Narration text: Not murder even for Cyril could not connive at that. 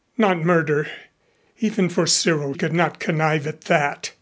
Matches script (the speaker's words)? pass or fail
pass